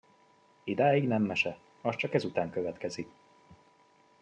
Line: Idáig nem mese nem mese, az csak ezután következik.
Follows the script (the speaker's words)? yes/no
no